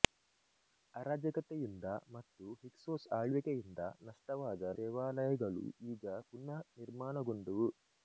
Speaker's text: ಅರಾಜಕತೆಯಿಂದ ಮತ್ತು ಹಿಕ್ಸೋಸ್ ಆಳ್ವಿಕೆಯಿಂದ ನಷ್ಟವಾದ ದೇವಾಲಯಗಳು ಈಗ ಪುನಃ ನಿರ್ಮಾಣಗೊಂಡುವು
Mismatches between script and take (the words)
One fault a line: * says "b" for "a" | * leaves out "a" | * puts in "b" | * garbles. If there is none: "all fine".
all fine